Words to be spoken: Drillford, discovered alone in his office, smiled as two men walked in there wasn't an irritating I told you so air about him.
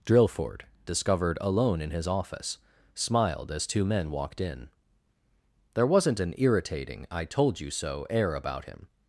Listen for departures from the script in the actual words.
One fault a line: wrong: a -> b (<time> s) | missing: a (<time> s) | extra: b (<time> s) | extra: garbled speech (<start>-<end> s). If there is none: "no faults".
no faults